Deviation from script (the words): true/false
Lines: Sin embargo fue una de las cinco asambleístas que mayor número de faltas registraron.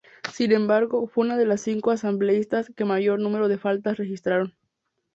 false